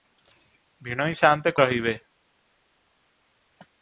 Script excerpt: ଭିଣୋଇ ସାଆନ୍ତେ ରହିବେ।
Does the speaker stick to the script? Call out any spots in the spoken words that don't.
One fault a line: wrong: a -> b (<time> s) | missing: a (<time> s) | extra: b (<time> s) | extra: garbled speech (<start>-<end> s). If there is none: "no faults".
no faults